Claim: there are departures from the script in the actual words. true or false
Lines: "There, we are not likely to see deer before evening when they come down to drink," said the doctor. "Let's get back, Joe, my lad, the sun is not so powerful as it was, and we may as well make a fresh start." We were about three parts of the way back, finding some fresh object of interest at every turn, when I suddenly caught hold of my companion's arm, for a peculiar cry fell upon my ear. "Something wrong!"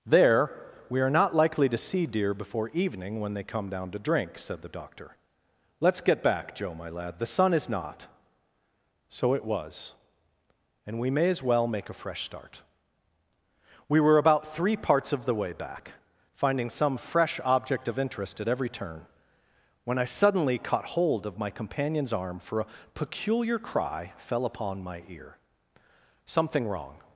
true